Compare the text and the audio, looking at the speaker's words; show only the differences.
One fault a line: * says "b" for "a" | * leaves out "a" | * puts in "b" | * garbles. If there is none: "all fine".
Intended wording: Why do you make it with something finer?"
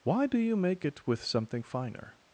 all fine